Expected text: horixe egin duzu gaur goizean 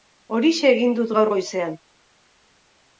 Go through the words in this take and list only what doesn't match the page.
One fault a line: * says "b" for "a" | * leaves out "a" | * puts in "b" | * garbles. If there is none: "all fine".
* says "dut" for "duzu"